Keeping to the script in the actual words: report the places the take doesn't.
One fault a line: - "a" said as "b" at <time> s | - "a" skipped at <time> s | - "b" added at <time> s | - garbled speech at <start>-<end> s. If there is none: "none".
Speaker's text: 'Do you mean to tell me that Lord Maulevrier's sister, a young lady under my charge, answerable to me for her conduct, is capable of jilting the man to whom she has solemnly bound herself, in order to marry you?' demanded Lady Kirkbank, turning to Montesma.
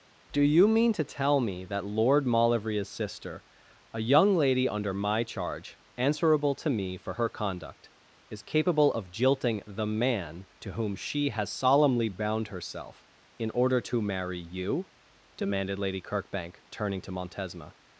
none